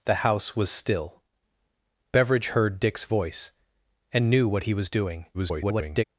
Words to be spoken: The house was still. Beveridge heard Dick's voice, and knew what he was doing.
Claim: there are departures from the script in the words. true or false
true